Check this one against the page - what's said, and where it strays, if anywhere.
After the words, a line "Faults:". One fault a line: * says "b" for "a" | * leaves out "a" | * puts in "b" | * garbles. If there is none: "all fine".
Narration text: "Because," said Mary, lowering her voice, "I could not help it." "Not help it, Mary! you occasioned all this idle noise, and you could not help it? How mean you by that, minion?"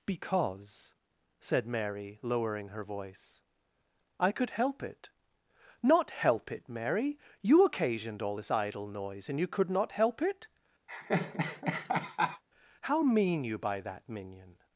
"Because," said Mary, lowering her voice, "I could help it." "Not help it, Mary! you occasioned all this idle noise, and you could not help it? How mean you by that, minion?"
Faults:
* leaves out "not"